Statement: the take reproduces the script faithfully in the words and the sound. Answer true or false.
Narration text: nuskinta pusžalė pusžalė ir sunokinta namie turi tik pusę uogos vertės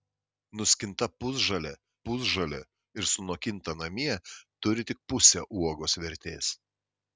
true